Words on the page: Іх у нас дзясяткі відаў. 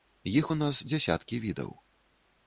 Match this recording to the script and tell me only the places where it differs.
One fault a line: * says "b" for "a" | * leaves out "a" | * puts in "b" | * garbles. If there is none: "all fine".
all fine